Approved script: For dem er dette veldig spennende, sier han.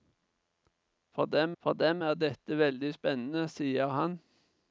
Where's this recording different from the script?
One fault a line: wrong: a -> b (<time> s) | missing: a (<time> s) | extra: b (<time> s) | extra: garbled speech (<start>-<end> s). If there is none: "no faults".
extra: for dem (1.6 s)